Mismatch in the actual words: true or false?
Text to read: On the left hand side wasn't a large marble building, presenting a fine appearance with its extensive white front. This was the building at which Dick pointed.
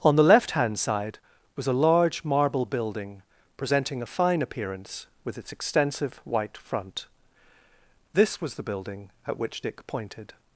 true